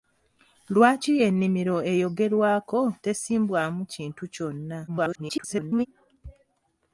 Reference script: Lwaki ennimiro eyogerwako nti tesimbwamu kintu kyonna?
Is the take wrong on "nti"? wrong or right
wrong